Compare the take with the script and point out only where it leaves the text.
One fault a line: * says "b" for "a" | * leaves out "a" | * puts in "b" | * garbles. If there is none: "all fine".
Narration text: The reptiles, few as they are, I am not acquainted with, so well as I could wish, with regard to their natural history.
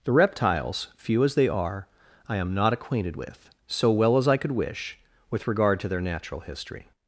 all fine